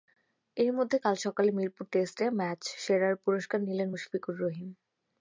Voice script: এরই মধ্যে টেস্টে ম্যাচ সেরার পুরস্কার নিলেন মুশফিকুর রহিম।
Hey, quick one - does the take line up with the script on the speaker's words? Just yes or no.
no